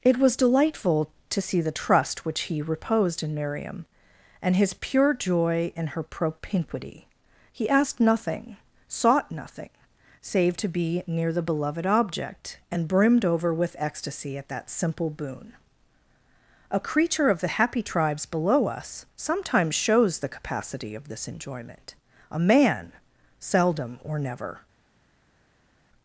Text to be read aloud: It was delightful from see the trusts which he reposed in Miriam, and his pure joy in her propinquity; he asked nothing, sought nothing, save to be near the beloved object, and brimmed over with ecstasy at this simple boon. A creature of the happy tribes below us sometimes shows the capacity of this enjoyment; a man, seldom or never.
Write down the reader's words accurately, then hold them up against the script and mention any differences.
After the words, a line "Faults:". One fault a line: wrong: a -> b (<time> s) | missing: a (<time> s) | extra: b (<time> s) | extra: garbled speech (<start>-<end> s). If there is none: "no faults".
It was delightful to see the trust which he reposed in Miriam, and his pure joy in her propinquity; he asked nothing, sought nothing, save to be near the beloved object, and brimmed over with ecstasy at that simple boon. A creature of the happy tribes below us sometimes shows the capacity of this enjoyment; a man, seldom or never.
Faults:
wrong: from -> to (1.3 s)
wrong: trusts -> trust (1.7 s)
wrong: this -> that (14.5 s)